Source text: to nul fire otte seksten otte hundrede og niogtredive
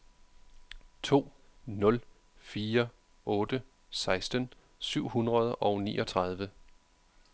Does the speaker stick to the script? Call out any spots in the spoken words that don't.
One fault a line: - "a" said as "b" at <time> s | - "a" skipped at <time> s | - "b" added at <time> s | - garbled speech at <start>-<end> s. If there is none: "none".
- "otte" said as "syv" at 4.8 s